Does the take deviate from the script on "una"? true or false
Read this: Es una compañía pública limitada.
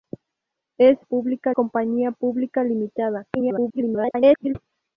true